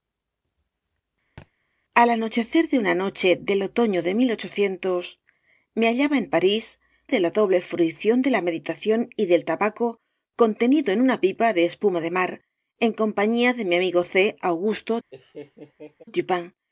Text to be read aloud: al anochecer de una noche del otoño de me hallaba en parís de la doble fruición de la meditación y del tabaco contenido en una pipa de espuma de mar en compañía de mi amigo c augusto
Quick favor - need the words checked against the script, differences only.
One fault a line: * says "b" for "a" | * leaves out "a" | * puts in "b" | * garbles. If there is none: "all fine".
all fine